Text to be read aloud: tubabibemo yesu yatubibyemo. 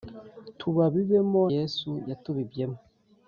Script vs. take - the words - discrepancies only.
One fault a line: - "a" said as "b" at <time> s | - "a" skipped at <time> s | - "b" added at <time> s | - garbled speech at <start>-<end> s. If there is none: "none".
none